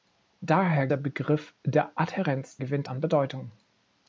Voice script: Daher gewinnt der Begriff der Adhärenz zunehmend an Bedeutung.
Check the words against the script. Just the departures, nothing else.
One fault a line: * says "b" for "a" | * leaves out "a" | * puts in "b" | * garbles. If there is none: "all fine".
* leaves out "gewinnt"
* says "gewinnt" for "zunehmend"